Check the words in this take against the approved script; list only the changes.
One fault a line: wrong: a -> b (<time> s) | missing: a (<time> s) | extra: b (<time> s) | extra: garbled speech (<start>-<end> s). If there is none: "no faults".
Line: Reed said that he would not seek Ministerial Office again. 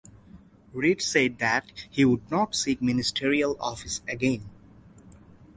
no faults